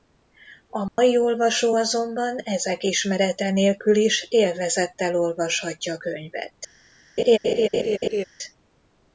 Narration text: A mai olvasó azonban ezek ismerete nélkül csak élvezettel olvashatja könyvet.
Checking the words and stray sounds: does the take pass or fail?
fail